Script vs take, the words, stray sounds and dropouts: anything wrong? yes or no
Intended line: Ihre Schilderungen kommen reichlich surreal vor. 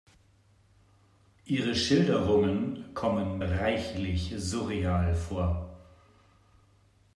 no